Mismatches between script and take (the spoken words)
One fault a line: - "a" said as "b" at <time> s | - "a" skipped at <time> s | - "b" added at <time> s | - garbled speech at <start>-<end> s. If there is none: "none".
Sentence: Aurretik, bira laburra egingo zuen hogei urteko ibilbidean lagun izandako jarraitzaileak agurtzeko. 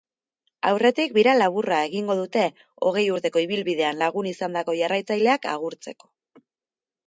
- "zuen" said as "dute" at 2.2 s